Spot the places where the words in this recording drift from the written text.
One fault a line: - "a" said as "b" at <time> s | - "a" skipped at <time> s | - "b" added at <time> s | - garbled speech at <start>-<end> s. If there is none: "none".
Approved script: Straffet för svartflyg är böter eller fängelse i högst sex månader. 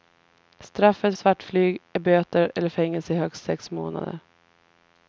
- "för" skipped at 1.1 s